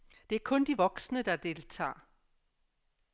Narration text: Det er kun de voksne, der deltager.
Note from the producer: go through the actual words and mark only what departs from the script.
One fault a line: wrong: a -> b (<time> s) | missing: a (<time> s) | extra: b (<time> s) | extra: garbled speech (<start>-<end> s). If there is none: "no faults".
no faults